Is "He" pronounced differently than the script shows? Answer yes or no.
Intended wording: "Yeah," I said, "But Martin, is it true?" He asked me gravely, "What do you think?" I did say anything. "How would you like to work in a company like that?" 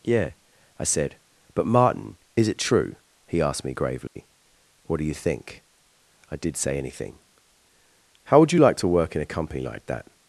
no